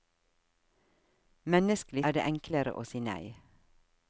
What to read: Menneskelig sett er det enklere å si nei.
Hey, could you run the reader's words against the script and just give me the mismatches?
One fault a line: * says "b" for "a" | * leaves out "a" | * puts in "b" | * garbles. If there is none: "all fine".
* leaves out "sett"